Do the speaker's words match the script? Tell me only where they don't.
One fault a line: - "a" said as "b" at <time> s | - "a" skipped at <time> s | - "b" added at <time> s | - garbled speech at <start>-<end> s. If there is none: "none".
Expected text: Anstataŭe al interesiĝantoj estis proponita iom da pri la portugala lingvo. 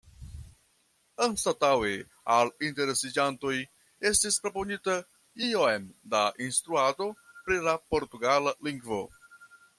- "instruado" added at 6.5 s